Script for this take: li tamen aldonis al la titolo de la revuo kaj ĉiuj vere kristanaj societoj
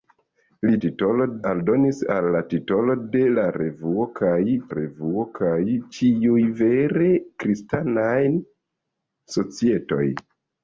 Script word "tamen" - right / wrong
wrong